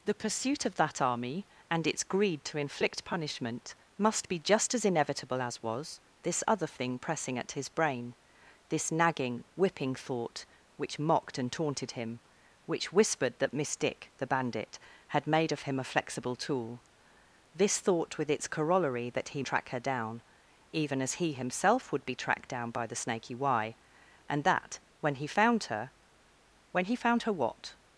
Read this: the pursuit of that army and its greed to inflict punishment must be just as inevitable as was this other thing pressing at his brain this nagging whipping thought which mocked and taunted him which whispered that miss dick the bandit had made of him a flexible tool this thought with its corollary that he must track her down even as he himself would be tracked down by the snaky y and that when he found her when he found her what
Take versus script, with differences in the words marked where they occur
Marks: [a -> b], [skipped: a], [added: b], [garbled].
the pursuit of that army and its greed to inflict punishment must be just as inevitable as was this other thing pressing at his brain this nagging whipping thought which mocked and taunted him which whispered that miss dick the bandit had made of him a flexible tool this thought with its corollary that he [skipped: must] track her down even as he himself would be tracked down by the snaky y and that when he found her when he found her what